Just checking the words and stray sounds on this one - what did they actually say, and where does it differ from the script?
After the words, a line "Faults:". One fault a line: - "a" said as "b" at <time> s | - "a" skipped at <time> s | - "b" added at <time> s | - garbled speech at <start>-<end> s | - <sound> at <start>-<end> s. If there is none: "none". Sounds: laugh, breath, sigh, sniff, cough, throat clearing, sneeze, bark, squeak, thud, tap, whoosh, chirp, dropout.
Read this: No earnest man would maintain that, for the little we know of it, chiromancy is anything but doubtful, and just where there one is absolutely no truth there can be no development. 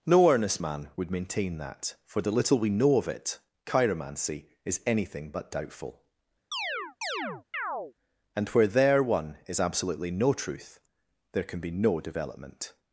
No earnest man would maintain that, for the little we know of it, chiromancy is anything but doubtful, and where there one is absolutely no truth there can be no development.
Faults:
- chirp at 6.5-7.9 s
- "just" skipped at 8.5 s